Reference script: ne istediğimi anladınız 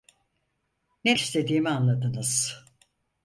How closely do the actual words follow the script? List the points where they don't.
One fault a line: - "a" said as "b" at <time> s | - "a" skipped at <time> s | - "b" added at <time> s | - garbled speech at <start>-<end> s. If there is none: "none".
none